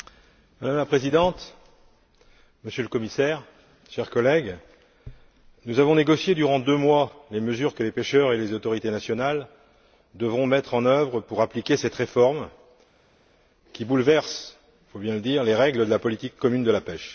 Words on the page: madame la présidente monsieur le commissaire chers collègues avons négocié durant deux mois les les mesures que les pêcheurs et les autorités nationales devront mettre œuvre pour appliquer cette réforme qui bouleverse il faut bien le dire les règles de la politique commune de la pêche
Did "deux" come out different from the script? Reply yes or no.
no